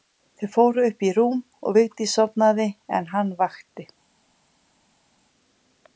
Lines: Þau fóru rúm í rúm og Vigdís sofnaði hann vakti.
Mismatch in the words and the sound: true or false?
true